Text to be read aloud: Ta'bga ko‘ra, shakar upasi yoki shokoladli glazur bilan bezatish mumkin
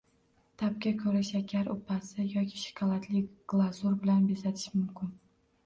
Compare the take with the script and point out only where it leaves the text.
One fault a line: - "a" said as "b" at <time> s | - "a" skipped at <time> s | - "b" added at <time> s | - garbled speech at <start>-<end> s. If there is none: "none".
none